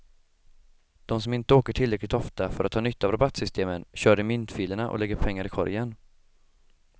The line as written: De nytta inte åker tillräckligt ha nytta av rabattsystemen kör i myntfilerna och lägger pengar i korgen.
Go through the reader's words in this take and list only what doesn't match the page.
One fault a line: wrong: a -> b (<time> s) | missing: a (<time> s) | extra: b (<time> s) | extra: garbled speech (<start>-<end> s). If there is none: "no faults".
wrong: nytta -> som (1.2 s)
extra: ofta för att (2.1 s)